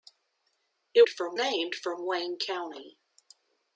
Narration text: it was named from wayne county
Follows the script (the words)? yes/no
no